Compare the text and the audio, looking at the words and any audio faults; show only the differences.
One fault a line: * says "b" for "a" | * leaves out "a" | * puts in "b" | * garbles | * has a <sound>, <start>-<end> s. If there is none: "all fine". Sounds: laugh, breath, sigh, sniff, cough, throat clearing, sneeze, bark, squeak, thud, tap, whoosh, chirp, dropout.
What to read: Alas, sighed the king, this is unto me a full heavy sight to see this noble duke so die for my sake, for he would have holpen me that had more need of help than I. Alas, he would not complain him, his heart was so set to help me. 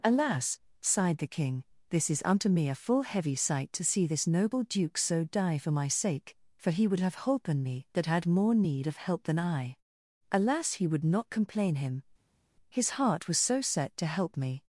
all fine